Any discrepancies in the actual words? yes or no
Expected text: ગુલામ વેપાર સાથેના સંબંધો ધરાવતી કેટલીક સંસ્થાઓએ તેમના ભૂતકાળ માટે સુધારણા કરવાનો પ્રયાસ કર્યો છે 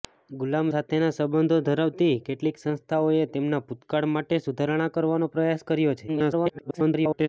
yes